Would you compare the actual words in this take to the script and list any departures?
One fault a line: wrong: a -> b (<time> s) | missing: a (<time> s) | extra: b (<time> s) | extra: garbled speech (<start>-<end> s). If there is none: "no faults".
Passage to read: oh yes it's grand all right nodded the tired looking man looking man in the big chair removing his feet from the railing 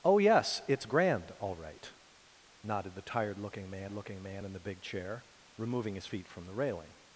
no faults